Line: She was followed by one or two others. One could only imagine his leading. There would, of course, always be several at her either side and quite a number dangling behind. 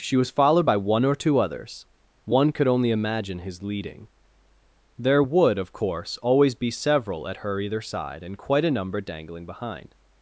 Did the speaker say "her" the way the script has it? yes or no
yes